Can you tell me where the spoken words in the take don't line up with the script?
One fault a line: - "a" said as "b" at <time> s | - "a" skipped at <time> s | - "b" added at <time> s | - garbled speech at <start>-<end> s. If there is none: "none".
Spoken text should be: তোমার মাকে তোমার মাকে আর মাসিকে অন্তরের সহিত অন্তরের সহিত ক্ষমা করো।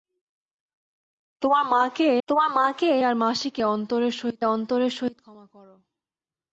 none